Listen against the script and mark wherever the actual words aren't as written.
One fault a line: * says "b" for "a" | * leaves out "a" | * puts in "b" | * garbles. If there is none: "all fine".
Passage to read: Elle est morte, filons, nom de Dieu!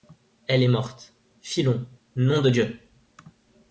all fine